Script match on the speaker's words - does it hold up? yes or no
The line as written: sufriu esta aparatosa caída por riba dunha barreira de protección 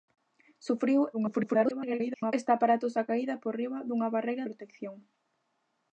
no